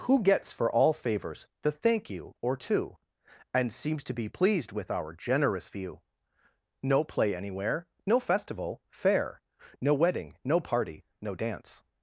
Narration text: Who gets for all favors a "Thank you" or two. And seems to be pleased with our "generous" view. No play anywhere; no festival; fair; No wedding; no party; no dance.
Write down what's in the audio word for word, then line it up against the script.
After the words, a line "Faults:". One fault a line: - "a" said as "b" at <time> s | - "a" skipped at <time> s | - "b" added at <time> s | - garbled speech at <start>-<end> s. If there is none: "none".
Who gets for all favors the "Thank you" or two. And seems to be pleased with our "generous" view. No play anywhere; no festival; fair; No wedding; no party; no dance.
Faults:
- "a" said as "the" at 1.6 s